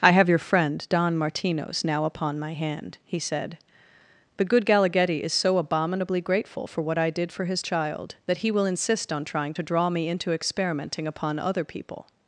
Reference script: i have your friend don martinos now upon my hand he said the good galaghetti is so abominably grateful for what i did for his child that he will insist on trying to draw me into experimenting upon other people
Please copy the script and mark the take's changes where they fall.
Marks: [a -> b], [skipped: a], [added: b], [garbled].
i have your friend don martinos now upon my hand he said the good galaghetti is so abominably grateful for what i did for his child that he will insist on trying to draw me into experimenting upon other people